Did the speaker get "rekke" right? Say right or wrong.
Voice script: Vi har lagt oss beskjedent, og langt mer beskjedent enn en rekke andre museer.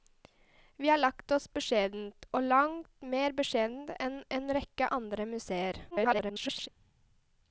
right